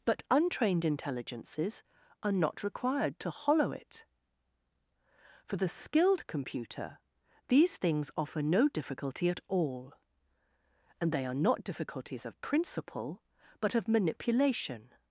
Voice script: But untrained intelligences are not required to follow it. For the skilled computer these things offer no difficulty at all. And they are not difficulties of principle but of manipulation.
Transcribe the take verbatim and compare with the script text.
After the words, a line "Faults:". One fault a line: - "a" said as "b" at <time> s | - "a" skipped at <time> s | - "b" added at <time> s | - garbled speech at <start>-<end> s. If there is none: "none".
But untrained intelligences are not required to hollow it. For the skilled computer these things offer no difficulty at all. And they are not difficulties of principle but of manipulation.
Faults:
- "follow" said as "hollow" at 3.3 s